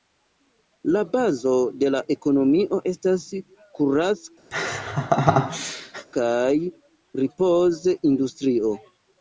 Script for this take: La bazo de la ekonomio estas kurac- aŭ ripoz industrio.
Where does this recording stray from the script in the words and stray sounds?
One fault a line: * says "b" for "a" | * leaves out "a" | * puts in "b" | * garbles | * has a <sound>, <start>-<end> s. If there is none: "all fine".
* has a laugh, 4.5-6.1 s
* says "kaj" for "aŭ"